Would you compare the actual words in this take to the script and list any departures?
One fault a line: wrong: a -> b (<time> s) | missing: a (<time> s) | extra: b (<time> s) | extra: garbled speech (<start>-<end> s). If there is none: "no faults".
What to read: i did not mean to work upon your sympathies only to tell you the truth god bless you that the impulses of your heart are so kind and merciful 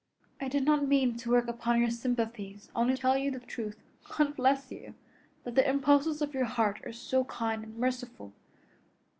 missing: to (3.0 s)